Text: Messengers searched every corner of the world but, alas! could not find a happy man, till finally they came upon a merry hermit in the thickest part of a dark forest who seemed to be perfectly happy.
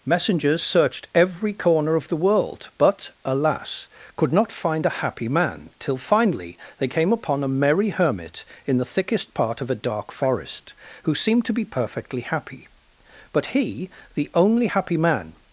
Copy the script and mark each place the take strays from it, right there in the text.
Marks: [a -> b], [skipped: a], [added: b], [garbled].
Messengers searched every corner of the world but, alas! could not find a happy man, till finally they came upon a merry hermit in the thickest part of a dark forest who seemed to be perfectly happy. [added: But he the only happy man]